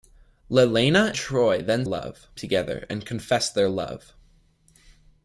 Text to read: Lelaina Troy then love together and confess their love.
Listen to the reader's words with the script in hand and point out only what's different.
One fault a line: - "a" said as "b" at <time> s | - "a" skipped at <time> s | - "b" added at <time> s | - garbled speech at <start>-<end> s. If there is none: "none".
none